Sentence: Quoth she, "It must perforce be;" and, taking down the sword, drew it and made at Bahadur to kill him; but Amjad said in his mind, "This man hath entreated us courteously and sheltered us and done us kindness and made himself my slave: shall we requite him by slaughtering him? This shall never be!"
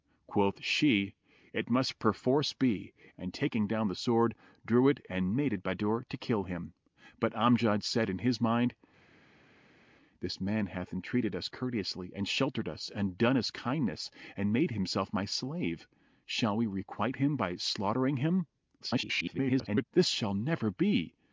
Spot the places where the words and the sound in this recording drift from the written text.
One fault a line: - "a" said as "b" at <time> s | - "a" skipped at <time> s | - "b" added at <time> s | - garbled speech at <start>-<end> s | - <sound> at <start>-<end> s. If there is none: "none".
- garbled speech at 18.8-19.9 s